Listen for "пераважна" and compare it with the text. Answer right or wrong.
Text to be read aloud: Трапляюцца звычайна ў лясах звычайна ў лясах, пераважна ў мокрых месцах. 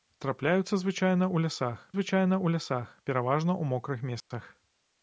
right